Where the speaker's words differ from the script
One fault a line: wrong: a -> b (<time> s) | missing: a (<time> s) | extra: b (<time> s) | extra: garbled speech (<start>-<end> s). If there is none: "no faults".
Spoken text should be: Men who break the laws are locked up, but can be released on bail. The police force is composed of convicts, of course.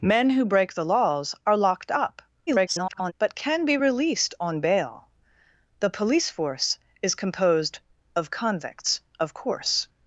extra: garbled speech (2.5-3.1 s)